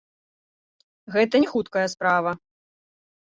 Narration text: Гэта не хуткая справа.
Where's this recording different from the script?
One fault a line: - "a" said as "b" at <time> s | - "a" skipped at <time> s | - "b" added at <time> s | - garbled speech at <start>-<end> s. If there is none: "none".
none